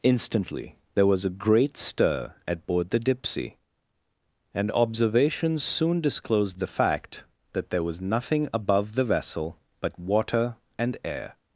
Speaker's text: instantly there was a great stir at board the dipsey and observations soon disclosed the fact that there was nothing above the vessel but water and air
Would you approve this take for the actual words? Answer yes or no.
yes